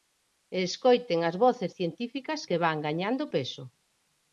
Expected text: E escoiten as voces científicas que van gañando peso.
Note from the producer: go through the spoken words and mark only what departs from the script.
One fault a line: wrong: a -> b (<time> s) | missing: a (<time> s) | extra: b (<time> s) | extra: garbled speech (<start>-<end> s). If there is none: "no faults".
no faults